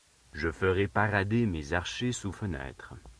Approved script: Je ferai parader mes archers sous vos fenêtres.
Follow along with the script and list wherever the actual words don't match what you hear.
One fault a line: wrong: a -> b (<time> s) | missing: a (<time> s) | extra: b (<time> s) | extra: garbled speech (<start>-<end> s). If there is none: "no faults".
missing: vos (2.3 s)